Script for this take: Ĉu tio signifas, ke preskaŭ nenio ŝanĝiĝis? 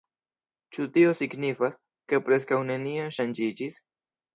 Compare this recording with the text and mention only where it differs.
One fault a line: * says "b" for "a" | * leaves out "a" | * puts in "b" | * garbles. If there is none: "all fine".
all fine